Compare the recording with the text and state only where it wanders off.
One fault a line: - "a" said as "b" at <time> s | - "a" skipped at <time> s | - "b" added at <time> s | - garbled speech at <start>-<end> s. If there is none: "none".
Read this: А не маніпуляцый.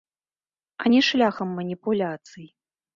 - "шляхам" added at 1.1 s